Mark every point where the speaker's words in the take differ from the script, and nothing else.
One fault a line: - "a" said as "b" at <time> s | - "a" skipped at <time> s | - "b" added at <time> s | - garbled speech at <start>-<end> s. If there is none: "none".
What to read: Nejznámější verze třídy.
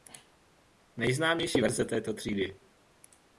- "této" added at 1.8 s